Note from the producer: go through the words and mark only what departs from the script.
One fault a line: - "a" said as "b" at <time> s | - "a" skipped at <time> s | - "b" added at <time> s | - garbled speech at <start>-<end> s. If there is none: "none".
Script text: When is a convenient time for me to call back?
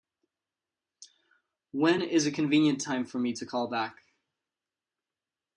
none